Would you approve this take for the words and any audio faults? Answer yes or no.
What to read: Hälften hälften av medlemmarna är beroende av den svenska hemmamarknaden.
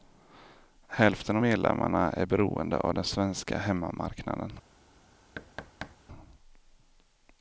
no